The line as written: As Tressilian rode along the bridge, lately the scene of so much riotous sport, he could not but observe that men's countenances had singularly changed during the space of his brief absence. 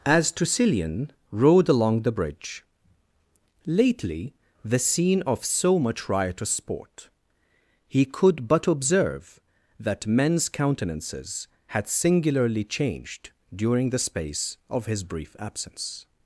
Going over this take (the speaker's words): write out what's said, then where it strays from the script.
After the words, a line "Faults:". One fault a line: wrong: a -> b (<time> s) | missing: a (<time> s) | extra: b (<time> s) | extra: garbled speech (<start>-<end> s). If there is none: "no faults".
As Tressilian rode along the bridge, lately the scene of so much riotous sport, he could but observe that men's countenances had singularly changed during the space of his brief absence.
Faults:
missing: not (8.5 s)